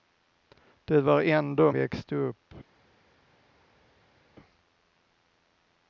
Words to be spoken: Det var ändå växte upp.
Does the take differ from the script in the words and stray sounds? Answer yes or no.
no